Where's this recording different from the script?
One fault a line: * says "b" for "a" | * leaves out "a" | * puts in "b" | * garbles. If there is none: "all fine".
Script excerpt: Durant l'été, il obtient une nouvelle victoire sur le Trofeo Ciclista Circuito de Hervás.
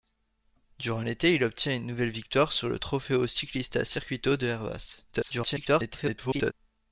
* garbles